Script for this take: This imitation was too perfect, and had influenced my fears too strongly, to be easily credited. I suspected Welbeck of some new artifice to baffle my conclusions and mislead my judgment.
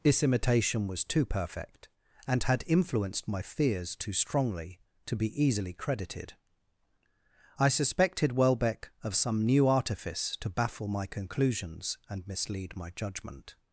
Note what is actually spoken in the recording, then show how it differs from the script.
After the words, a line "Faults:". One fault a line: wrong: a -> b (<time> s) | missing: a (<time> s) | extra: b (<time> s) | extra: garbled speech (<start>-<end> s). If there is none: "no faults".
This imitation was too perfect, and had influenced my fears too strongly, to be easily credited. I suspected Welbeck of some new artifice to baffle my conclusions and mislead my judgment.
Faults:
no faults